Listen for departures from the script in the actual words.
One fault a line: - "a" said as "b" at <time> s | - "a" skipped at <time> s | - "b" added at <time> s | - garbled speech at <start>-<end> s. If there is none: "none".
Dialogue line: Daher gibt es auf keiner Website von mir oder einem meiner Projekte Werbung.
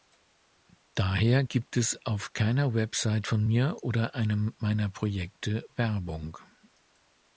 none